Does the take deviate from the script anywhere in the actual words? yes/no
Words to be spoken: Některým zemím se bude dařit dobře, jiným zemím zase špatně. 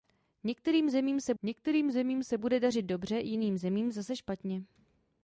yes